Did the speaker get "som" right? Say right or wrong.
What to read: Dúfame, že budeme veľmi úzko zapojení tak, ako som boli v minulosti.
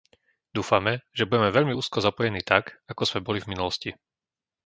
wrong